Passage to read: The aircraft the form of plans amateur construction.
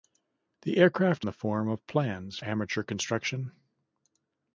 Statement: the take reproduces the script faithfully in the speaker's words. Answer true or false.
true